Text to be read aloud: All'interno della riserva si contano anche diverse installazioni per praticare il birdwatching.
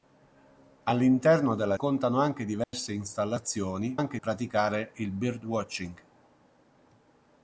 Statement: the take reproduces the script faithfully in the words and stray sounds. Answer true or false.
false